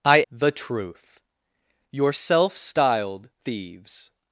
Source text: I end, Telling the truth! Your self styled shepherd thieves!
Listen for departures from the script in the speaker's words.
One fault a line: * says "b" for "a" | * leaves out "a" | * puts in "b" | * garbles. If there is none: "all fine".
* leaves out "end Telling"
* leaves out "shepherd"